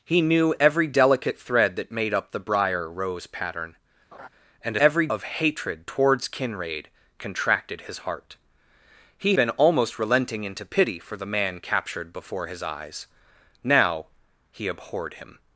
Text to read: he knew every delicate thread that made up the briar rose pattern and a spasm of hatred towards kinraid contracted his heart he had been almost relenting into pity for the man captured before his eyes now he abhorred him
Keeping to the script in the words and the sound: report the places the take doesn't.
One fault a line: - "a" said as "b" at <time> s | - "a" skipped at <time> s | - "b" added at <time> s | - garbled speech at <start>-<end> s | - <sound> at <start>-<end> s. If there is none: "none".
- laugh at 4.1-4.3 s
- "spasm" said as "every" at 4.8 s
- "had" skipped at 9.3 s